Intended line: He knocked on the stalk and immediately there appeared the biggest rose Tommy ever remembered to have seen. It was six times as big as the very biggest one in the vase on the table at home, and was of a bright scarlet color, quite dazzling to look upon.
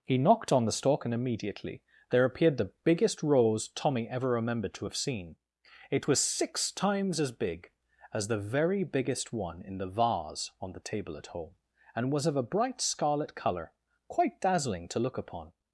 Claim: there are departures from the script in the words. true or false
false